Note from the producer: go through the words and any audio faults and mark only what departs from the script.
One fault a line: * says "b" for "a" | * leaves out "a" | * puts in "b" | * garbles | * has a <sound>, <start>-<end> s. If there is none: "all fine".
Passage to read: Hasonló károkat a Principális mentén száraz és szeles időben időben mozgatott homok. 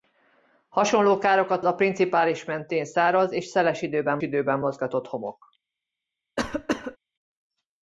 * has a cough, 6.4-7.0 s